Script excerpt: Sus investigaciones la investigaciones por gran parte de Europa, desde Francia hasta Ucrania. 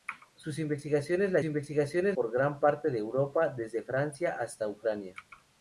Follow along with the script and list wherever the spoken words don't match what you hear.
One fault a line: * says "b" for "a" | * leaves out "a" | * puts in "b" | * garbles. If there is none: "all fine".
all fine